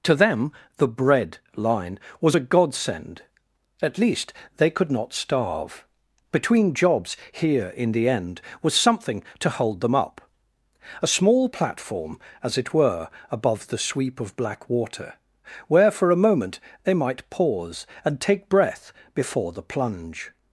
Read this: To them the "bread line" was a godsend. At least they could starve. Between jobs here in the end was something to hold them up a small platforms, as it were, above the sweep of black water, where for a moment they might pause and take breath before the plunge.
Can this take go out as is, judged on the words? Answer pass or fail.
fail